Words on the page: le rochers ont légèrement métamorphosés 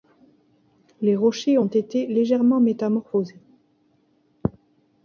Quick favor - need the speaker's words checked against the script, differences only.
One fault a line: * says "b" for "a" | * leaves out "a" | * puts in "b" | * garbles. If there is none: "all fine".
* says "les" for "le"
* puts in "été"